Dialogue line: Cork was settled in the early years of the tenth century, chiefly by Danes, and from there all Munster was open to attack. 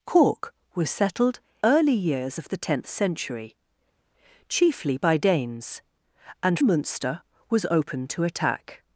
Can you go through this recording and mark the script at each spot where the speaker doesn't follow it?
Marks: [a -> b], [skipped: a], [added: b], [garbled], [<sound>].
Cork was settled [skipped: in the] early years of the tenth century, chiefly by Danes, and [skipped: from there all] Munster was open to attack.